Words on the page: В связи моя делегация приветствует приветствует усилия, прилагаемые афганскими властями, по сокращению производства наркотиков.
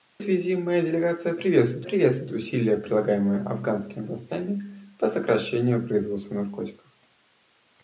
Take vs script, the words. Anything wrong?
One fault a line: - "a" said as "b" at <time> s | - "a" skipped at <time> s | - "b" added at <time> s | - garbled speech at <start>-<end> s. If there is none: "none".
none